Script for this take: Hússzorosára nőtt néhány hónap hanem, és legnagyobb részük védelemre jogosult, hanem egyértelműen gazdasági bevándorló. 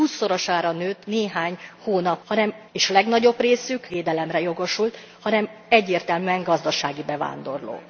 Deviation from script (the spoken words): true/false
false